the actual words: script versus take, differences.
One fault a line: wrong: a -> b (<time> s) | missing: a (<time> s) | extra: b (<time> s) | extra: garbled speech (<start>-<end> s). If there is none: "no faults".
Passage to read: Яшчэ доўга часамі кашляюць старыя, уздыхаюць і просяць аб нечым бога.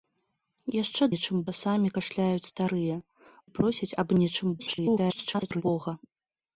wrong: доўга -> нечым (1.1 s)
missing: уздыхаюць (3.0 s)
extra: garbled speech (4.6-5.6 s)